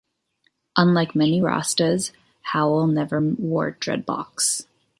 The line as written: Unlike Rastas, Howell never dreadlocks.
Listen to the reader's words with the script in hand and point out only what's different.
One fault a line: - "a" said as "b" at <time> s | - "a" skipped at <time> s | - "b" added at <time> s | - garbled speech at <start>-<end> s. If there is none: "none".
- "many" added at 1.1 s
- "wore" added at 3.2 s